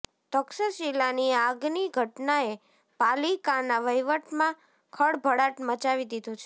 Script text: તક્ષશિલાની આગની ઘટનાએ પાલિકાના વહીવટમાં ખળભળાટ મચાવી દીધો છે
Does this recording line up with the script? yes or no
yes